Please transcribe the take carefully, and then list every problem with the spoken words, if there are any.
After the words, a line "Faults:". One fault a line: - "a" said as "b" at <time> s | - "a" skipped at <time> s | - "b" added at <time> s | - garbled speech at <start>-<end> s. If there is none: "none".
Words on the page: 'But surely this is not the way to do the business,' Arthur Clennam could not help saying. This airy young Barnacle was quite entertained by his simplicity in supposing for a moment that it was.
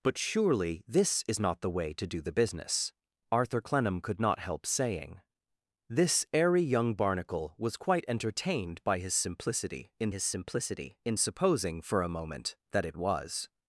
'But surely this is not the way to do the business,' Arthur Clennam could not help saying. This airy young Barnacle was quite entertained by his simplicity in his simplicity in supposing for a moment that it was.
Faults:
- "his simplicity in" added at 10.1 s